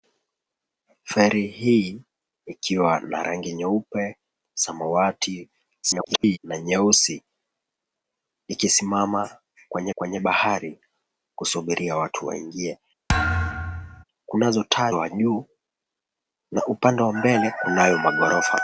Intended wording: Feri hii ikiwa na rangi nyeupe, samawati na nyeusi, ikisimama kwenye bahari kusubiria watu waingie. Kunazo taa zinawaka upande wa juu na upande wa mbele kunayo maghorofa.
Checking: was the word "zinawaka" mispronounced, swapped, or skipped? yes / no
yes